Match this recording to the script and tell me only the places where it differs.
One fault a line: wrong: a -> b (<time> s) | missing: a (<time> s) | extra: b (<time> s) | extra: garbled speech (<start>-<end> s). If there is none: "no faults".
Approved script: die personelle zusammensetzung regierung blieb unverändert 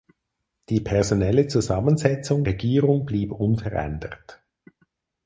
no faults